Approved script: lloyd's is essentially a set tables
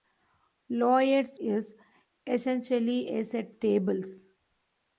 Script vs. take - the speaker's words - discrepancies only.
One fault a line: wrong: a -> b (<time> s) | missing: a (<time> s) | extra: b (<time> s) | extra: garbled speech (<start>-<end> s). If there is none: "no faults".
no faults